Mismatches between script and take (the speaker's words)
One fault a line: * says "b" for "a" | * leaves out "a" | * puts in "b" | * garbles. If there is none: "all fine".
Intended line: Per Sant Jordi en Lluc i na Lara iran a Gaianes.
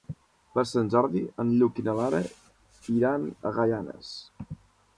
all fine